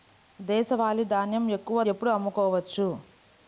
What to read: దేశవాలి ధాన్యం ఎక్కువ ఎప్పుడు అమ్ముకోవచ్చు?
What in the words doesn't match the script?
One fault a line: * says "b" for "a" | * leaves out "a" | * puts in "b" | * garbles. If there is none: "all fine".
all fine